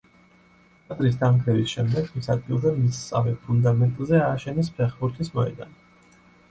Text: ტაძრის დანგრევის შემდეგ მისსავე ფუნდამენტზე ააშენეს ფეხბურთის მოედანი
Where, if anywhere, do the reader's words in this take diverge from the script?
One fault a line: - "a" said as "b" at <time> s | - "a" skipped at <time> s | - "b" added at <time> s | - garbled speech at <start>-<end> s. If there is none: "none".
- "მის ადგილზე" added at 2.1 s